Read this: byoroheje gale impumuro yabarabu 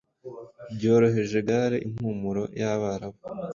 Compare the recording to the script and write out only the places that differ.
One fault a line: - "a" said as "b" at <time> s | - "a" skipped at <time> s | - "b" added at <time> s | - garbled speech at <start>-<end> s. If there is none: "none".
none